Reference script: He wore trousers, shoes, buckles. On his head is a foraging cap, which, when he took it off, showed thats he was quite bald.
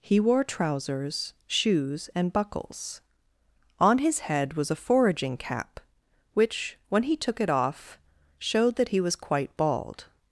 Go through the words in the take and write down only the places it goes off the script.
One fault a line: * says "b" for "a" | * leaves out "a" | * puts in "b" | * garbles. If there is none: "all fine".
* puts in "and"
* says "was" for "is"
* says "that" for "thats"